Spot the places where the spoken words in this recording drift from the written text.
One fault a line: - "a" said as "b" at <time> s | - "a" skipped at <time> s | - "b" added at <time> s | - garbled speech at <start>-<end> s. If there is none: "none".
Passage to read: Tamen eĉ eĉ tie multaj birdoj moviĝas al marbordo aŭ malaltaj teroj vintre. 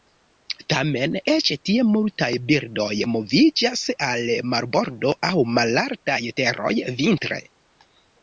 - "eĉ" skipped at 1.5 s